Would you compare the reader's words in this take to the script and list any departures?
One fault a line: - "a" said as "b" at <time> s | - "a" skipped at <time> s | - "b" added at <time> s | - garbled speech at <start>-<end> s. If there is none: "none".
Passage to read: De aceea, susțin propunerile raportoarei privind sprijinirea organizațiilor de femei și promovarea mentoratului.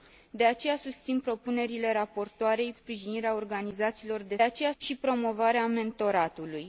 - "privind" skipped at 2.7 s
- "femei" said as "aceea" at 4.4 s